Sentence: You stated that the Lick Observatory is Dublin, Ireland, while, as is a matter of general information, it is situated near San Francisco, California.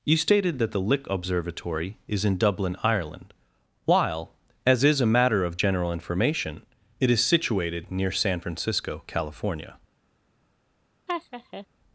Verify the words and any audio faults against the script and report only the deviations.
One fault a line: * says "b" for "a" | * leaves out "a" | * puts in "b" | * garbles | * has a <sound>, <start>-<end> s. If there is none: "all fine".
* puts in "in"
* has a laugh, 11.1-11.7 s